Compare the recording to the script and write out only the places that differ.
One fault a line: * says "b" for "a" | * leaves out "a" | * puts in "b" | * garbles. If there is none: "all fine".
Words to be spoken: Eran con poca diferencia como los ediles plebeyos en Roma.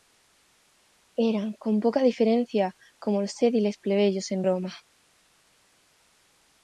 all fine